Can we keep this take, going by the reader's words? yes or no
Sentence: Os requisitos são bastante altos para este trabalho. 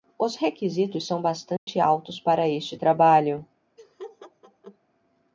yes